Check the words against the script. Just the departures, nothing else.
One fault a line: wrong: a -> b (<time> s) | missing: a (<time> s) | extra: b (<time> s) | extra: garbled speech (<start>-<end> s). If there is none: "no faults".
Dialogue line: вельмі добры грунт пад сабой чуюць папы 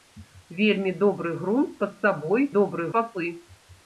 wrong: чуюць -> добры (2.6 s)